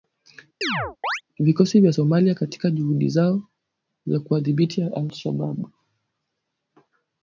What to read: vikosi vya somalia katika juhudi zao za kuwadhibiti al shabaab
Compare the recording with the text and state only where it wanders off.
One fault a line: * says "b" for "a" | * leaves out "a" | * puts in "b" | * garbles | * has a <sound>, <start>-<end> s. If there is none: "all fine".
* has a chirp, 0.6-1.2 s